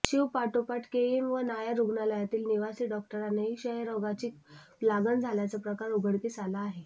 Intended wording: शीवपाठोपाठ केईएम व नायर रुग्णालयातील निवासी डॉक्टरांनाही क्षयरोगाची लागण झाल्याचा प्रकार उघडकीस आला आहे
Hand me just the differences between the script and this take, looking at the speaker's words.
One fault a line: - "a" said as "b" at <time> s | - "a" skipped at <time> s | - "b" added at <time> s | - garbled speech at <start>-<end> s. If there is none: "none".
none